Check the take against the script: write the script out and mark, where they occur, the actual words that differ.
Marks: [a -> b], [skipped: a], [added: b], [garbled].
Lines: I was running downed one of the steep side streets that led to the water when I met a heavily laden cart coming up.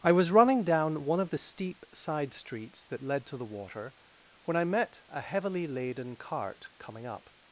I was running [downed -> down] one of the steep side streets that led to the water when I met a heavily laden cart coming up.